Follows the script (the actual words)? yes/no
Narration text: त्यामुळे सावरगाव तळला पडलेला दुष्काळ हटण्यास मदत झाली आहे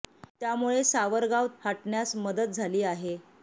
no